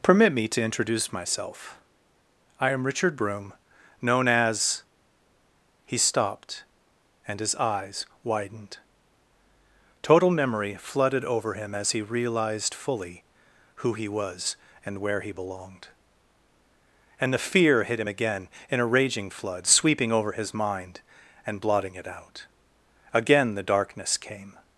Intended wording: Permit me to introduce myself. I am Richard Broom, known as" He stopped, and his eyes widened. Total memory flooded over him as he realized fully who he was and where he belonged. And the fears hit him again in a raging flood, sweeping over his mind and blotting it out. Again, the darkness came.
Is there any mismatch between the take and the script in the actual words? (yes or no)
yes